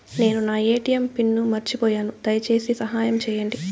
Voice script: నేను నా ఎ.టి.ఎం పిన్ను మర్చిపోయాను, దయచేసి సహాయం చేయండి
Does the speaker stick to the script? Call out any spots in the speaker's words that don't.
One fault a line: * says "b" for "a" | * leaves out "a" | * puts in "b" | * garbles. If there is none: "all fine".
all fine